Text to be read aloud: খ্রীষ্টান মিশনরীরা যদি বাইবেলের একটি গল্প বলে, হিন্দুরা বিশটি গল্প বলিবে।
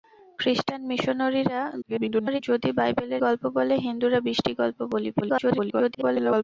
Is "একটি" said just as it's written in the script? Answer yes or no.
no